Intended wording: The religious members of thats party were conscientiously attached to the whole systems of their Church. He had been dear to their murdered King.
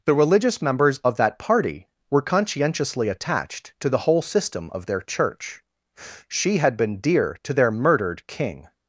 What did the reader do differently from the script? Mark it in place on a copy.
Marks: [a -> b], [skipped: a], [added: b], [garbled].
The religious members of [thats -> that] party were conscientiously attached to the whole [systems -> system] of their Church. [He -> She] had been dear to their murdered King.